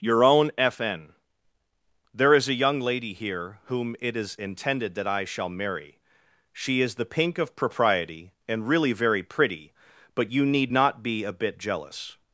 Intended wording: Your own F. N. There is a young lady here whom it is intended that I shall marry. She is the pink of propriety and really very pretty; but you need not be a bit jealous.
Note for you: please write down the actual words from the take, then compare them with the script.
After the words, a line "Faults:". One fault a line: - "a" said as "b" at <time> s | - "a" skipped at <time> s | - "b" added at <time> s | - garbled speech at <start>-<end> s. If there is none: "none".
Your own F. N. There is a young lady here whom it is intended that I shall marry. She is the pink of propriety and really very pretty; but you need not be a bit jealous.
Faults:
none